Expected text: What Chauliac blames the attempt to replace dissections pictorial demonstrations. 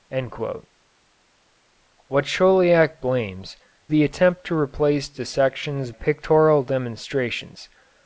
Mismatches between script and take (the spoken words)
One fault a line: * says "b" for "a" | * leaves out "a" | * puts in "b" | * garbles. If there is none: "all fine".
all fine